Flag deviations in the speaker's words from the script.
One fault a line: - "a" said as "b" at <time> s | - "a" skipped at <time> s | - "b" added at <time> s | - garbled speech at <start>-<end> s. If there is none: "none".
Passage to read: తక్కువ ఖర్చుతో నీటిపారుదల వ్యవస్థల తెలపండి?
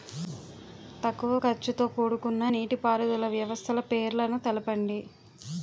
- "కూడుకున్న" added at 1.9 s
- "పేర్లను" added at 3.9 s